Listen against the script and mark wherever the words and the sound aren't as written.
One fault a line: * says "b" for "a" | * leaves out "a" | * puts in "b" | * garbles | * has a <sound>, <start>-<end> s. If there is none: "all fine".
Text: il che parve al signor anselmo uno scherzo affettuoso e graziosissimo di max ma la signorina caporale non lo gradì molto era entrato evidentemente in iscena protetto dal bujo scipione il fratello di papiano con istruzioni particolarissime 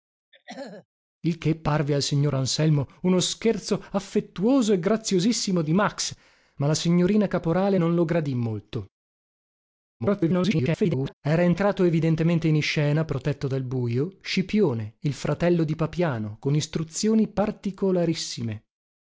* has a throat clearing, 0.3-0.9 s
* garbles